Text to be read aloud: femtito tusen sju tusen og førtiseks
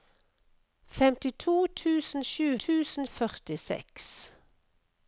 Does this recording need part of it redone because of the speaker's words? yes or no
no